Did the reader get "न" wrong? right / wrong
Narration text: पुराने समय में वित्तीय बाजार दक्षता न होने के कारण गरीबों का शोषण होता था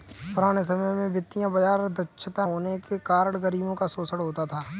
wrong